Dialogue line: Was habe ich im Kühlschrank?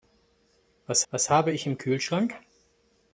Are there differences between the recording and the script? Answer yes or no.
yes